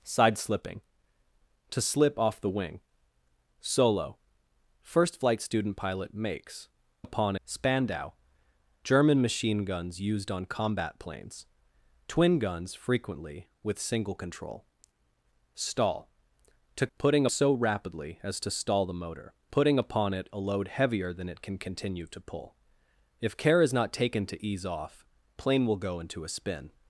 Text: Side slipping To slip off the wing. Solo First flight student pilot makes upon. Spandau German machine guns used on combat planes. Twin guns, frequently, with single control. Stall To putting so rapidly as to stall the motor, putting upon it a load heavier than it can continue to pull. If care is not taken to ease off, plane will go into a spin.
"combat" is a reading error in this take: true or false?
false